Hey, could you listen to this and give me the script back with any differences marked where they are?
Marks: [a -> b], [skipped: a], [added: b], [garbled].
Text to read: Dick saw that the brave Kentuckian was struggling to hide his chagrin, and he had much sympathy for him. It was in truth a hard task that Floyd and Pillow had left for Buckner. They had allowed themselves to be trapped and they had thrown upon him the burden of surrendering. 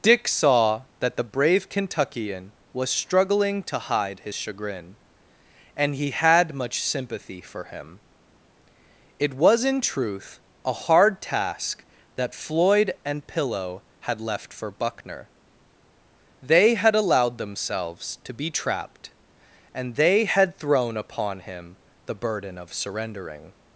Dick saw that the brave Kentuckian was struggling to hide his chagrin, and he had much sympathy for him. It was in truth a hard task that Floyd and Pillow had left for Buckner. They had allowed themselves to be trapped and they had thrown upon him the burden of surrendering.